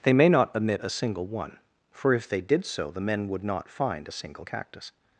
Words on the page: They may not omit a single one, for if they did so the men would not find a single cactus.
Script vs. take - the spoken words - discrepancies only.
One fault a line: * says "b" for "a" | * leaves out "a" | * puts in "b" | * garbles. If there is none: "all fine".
all fine